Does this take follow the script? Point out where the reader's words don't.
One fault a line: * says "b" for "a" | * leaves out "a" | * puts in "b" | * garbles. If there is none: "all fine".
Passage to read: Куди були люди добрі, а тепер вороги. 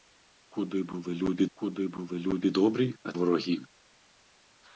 * puts in "куди були люди"
* leaves out "тепер"